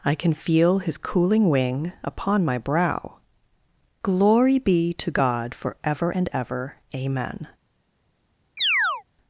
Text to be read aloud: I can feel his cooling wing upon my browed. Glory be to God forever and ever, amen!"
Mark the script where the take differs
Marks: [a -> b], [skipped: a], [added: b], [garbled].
I can feel his cooling wing upon my [browed. -> brow] Glory be to God forever and ever, amen!"